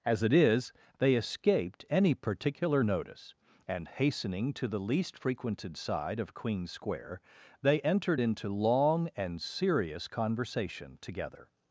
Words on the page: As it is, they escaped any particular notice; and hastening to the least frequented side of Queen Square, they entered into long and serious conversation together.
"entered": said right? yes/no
yes